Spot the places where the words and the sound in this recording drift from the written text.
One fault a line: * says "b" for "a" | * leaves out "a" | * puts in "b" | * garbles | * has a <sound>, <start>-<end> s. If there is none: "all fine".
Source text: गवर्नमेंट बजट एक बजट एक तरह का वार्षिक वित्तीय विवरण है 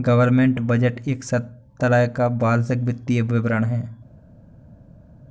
* leaves out "बजट एक"